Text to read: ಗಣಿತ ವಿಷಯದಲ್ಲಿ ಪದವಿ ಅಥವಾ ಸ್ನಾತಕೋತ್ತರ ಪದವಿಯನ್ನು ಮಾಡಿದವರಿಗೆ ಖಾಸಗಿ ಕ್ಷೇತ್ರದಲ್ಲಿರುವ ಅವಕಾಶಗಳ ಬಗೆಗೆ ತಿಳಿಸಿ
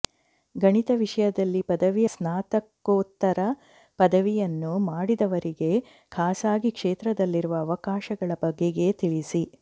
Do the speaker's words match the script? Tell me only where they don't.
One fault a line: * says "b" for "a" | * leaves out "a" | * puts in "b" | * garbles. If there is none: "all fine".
* leaves out "ಅಥವಾ"